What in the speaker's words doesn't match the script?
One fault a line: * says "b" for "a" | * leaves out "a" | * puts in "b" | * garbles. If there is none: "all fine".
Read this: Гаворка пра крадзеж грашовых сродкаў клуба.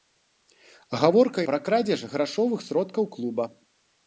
all fine